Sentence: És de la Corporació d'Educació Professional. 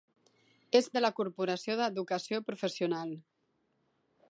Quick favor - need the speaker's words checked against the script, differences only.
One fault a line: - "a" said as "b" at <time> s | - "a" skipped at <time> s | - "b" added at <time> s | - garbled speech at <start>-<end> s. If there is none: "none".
none